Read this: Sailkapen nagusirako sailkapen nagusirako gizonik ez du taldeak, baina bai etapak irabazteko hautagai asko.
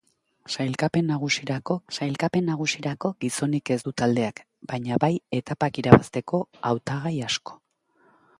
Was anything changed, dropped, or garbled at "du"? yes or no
no